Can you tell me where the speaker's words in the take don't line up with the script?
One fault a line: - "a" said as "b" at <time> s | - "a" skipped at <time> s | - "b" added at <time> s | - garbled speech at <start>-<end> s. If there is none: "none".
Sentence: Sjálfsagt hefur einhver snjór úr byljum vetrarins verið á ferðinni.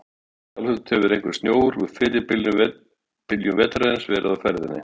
- "fyrri" added at 2.0 s